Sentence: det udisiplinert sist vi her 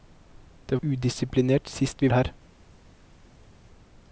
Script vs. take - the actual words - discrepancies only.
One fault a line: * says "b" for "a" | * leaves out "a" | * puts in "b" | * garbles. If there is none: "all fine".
all fine